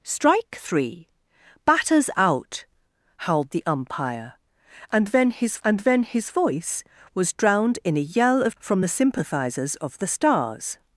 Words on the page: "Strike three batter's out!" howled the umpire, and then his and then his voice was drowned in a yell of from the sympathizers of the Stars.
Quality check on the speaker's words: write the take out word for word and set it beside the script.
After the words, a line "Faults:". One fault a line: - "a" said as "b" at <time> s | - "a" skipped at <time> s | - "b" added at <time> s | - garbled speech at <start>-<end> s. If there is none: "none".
"Strike three batter's out!" howled the umpire, and then his and then his voice was drowned in a yell of from the sympathizers of the Stars.
Faults:
none